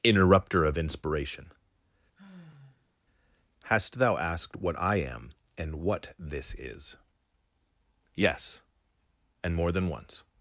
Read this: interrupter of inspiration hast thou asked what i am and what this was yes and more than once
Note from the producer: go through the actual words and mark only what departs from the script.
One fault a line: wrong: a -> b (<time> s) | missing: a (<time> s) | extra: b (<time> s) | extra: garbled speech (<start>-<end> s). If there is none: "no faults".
wrong: was -> is (6.5 s)